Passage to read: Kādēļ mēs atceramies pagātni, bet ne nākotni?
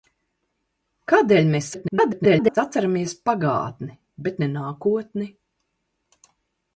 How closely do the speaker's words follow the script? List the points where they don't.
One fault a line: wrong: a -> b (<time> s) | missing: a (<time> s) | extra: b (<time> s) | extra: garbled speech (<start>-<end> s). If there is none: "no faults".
extra: garbled speech (1.7-2.6 s)